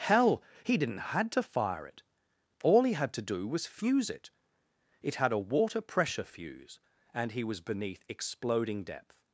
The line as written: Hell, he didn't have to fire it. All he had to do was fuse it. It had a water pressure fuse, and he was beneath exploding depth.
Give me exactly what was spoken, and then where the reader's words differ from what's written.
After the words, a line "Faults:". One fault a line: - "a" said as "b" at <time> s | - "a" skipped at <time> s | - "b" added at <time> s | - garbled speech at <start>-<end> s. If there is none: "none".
Hell, he didn't had to fire it. All he had to do was fuse it. It had a water pressure fuse, and he was beneath exploding depth.
Faults:
- "have" said as "had" at 1.1 s